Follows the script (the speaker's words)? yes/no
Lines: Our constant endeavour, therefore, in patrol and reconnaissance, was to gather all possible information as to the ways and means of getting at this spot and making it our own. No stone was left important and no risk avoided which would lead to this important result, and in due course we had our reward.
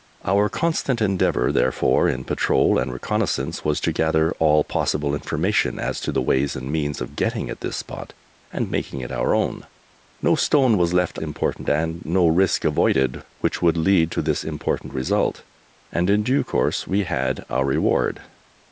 yes